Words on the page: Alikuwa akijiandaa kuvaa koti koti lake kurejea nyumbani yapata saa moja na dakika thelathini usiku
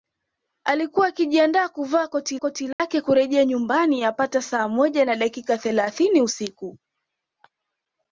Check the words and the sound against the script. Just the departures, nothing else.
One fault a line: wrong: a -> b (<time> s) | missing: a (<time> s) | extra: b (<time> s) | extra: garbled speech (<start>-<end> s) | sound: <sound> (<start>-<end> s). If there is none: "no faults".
sound: dropout (2.7-2.8 s)